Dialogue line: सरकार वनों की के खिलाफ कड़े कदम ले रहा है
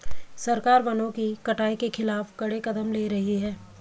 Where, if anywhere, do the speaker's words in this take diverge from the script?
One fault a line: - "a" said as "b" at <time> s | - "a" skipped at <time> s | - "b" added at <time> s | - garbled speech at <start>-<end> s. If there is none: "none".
- "कटाई" added at 1.4 s
- "रहा" said as "रही" at 3.1 s